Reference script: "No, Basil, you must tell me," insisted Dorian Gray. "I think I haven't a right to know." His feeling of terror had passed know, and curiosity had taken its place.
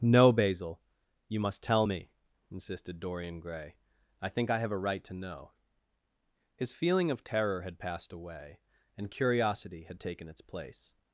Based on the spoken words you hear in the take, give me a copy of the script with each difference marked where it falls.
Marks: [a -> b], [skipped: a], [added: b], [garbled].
"No, Basil, you must tell me," insisted Dorian Gray. "I think I [haven't -> have] a right to know." His feeling of terror had passed [know, -> away] and curiosity had taken its place.